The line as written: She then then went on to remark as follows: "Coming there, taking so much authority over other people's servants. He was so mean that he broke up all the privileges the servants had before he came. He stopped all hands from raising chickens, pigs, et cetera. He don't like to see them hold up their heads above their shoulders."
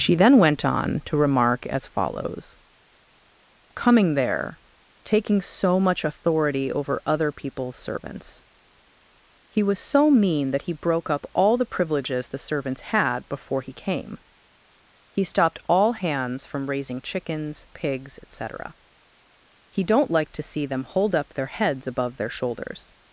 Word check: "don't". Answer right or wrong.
right